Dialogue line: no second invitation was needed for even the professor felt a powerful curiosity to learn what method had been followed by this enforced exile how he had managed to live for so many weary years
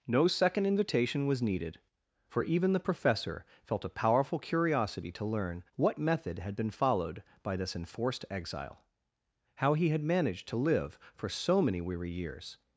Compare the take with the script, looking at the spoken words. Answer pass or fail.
pass